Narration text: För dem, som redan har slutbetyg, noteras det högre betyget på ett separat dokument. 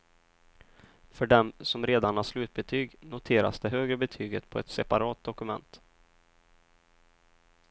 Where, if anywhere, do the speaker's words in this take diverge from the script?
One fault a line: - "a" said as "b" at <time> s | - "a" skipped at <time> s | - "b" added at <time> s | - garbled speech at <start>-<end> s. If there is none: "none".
none